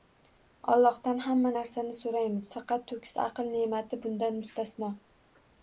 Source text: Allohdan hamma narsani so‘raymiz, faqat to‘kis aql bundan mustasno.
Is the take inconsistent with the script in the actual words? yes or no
yes